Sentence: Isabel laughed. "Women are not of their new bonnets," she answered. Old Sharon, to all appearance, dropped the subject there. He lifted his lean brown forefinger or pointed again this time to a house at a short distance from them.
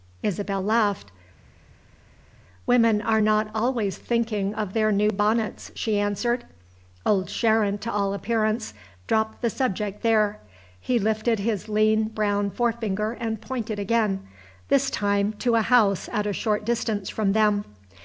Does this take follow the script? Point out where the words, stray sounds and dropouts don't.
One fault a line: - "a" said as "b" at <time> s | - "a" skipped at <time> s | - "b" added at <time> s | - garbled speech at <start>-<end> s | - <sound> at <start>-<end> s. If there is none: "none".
- "always thinking" added at 3.5 s
- "or" said as "and" at 13.2 s